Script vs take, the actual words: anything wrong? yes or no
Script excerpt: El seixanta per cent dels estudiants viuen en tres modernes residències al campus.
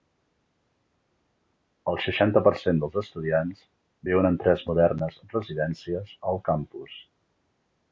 no